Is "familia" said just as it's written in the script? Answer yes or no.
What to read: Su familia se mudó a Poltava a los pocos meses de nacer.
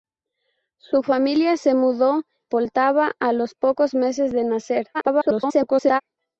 yes